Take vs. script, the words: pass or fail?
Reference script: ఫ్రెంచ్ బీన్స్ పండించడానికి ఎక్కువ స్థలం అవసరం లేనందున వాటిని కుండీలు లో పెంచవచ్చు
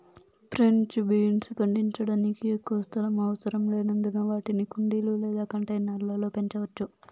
fail